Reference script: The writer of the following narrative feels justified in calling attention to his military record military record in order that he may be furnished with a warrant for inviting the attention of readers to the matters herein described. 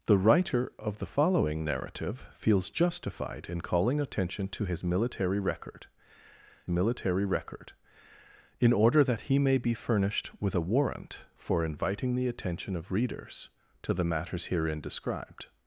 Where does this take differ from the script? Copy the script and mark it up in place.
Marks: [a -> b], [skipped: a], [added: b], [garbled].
The writer of the following narrative feels justified in calling attention to his military record military record in order that he may be furnished with a warrant for inviting the attention of readers to the matters herein described.